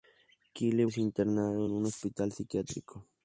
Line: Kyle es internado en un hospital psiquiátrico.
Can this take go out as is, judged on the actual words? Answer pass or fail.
pass